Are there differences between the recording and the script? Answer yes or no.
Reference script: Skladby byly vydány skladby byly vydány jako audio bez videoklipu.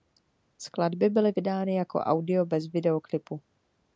yes